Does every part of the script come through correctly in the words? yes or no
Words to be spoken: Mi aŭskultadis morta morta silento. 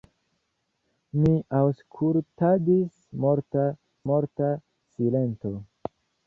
yes